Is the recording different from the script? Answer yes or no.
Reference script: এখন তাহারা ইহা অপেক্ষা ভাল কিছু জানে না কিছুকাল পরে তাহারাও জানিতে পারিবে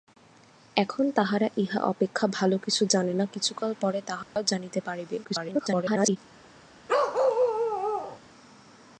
yes